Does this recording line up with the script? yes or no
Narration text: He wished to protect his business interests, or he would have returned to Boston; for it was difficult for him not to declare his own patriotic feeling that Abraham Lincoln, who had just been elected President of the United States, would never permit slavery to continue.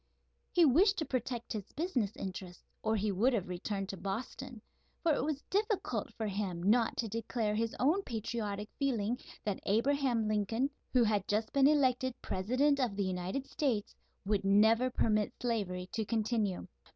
yes